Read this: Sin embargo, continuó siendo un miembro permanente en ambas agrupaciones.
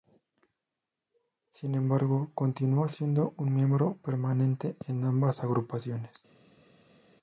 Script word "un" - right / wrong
right